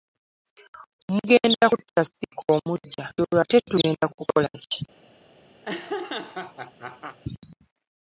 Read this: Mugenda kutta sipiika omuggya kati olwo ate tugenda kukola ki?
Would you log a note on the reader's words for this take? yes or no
yes